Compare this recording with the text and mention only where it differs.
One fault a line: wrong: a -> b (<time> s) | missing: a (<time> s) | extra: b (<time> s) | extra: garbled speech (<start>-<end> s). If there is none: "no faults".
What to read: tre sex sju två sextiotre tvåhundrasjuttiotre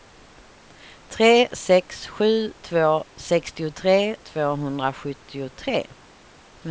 no faults